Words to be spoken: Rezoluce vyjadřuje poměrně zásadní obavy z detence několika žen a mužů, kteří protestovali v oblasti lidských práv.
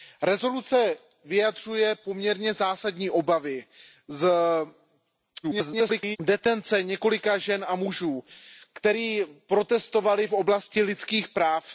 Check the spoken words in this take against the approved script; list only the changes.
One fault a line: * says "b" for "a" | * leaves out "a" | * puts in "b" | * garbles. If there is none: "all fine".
* garbles